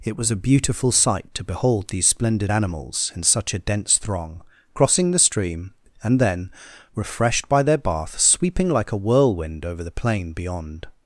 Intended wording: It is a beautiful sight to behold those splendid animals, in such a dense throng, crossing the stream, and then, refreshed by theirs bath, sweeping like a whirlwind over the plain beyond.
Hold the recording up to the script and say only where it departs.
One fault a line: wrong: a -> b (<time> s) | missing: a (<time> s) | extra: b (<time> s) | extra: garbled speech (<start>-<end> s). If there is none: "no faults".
wrong: is -> was (0.2 s)
wrong: those -> these (1.9 s)
wrong: theirs -> their (7.6 s)